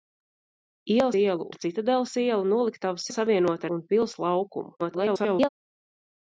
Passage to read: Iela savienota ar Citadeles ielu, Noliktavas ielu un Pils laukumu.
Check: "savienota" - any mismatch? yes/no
yes